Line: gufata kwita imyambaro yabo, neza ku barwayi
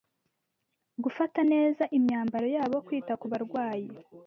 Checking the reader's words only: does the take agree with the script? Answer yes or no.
no